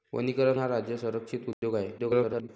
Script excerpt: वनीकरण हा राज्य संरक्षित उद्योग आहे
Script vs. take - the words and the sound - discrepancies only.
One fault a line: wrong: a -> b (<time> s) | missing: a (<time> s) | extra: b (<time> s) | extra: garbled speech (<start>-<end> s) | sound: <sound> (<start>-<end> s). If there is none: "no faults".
sound: dropout (1.5-1.6 s)
extra: garbled speech (2.0-2.5 s)